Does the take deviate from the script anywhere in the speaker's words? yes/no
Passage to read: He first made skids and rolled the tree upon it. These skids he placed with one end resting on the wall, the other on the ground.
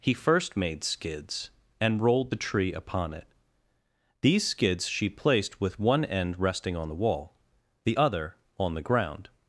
yes